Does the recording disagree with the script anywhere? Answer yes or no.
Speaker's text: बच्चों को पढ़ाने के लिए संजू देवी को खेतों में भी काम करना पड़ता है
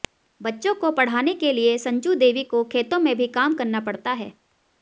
no